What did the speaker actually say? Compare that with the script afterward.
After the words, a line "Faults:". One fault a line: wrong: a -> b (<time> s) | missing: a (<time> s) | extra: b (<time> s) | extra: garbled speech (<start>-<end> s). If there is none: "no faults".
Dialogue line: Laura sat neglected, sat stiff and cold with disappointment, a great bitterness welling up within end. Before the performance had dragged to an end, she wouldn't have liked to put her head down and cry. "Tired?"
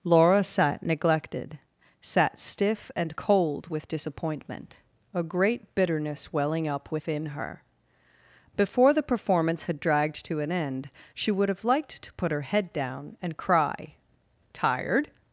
Laura sat neglected, sat stiff and cold with disappointment, a great bitterness welling up within her. Before the performance had dragged to an end, she would have liked to put her head down and cry. "Tired?"
Faults:
wrong: end -> her (7.3 s)
wrong: wouldn't -> would (11.3 s)